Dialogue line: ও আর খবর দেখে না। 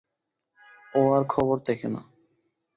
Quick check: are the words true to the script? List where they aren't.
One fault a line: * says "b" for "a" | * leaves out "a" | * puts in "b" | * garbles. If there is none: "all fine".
all fine